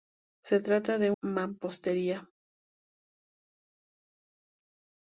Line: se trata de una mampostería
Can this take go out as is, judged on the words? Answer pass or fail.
fail